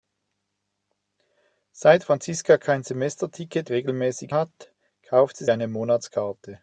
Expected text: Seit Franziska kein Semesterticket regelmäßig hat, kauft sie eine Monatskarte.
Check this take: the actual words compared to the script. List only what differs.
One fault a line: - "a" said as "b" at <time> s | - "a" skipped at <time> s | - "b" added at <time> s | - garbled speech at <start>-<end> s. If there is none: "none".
none